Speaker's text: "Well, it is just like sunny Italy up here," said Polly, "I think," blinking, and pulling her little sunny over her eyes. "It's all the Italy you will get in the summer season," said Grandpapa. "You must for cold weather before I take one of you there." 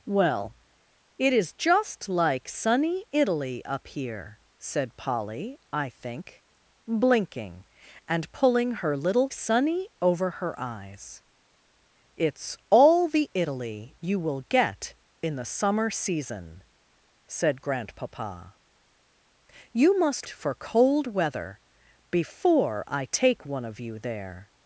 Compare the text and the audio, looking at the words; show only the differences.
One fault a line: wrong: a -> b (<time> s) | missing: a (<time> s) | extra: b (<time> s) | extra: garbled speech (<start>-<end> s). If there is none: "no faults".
no faults